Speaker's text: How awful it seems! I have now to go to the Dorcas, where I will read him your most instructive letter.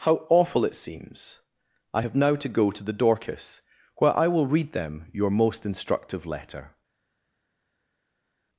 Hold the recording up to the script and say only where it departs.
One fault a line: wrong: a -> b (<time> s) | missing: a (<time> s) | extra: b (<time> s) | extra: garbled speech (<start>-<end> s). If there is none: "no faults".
wrong: him -> them (4.7 s)